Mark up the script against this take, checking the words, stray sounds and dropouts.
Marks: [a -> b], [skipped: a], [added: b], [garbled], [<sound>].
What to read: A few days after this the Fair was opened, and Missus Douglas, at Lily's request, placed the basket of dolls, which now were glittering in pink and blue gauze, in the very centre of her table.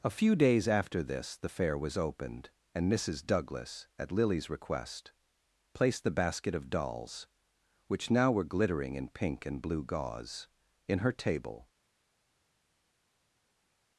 A few days after this the Fair was opened, and Missus Douglas, at Lily's request, placed the basket of dolls, which now were glittering in pink and blue gauze, in [skipped: the very centre of] her table.